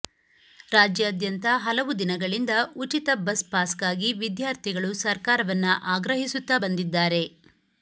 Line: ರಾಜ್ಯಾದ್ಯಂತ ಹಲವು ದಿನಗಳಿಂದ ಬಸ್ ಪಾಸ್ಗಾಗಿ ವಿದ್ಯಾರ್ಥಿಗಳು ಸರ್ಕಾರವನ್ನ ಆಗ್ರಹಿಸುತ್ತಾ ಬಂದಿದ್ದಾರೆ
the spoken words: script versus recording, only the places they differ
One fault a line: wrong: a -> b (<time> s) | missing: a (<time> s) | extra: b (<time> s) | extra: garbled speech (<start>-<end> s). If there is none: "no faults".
extra: ಉಚಿತ (2.8 s)